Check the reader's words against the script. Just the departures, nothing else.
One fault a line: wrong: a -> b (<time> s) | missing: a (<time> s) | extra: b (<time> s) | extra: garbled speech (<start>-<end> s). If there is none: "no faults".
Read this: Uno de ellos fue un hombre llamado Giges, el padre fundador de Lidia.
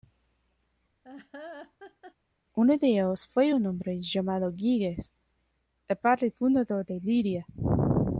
no faults